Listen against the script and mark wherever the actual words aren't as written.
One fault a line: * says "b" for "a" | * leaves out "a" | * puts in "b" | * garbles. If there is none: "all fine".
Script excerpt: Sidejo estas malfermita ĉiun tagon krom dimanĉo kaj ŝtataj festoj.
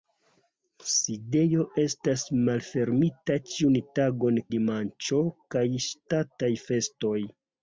* leaves out "krom"